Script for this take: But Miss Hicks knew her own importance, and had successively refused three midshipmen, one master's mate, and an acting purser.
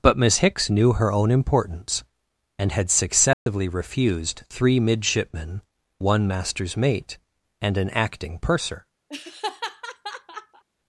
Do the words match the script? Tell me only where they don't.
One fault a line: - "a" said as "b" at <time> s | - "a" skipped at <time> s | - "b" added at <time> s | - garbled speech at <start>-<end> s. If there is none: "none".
none